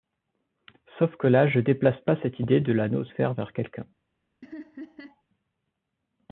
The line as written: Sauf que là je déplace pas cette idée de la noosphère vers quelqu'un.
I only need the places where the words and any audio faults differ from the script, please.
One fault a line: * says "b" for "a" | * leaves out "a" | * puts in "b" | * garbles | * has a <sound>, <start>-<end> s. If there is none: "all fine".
* has a laugh, 4.4-5.2 s